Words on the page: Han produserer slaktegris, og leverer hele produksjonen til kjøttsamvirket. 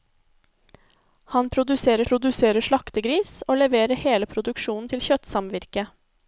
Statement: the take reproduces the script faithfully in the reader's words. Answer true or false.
false